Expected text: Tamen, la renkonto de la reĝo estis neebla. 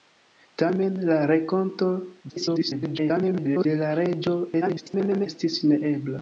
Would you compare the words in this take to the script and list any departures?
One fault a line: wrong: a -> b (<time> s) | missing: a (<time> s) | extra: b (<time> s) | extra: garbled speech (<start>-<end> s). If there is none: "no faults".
extra: garbled speech (2.3-3.7 s)
extra: garbled speech (4.6-5.3 s)